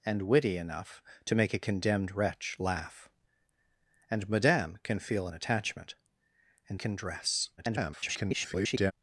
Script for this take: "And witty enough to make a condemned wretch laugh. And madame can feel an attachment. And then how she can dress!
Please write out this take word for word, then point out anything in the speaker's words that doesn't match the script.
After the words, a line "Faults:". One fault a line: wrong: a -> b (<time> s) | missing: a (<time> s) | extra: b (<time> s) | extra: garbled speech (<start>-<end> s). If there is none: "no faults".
"And witty enough to make a condemned wretch laugh. And madame can feel an attachment. And can dress! [garbled]
Faults:
missing: then how she (6.8 s)
extra: garbled speech (7.6-8.9 s)